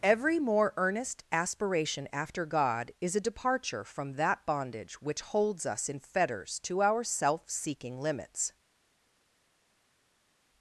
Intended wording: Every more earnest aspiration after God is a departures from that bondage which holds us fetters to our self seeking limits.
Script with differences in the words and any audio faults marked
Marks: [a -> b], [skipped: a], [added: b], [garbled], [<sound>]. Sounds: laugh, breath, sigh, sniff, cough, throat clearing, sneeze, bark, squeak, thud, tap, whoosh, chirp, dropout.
Every more earnest aspiration after God is a [departures -> departure] from that bondage which holds us [added: in] fetters to our self seeking limits.